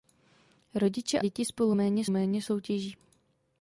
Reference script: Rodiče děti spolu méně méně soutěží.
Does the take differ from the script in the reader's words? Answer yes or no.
no